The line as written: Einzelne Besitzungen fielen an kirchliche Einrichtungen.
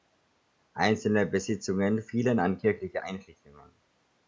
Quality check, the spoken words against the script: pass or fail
pass